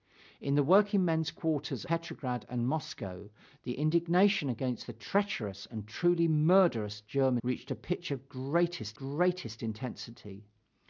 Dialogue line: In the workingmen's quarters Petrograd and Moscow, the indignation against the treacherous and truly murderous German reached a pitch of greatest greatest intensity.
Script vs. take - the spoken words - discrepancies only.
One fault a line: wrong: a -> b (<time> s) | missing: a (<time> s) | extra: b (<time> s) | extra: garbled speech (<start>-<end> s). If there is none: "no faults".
no faults